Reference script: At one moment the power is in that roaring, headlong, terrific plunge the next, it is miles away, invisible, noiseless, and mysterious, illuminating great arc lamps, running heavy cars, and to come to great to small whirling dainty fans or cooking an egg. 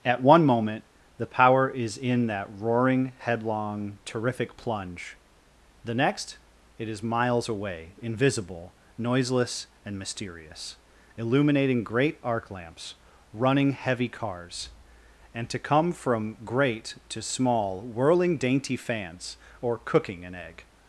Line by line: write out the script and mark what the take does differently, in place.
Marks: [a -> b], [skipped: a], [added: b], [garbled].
At one moment the power is in that roaring, headlong, terrific plunge the next, it is miles away, invisible, noiseless, and mysterious, illuminating great arc lamps, running heavy cars, and to come [to -> from] great to small whirling dainty fans or cooking an egg.